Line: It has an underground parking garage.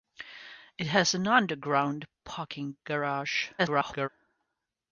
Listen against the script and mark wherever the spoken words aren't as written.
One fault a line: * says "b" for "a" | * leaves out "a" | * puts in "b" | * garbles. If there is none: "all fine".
* garbles